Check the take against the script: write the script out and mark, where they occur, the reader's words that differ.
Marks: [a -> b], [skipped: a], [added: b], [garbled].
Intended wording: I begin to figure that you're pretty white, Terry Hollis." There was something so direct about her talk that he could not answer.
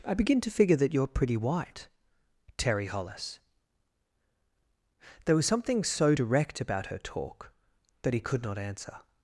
I begin to figure that you're pretty white, Terry Hollis." There was something so direct about her talk that he could not answer.